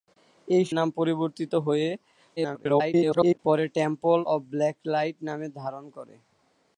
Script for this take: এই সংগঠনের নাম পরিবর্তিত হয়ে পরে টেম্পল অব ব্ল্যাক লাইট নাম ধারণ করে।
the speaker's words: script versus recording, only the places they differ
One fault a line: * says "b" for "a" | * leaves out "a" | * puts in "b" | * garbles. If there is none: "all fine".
* leaves out "সংগঠনের"
* garbles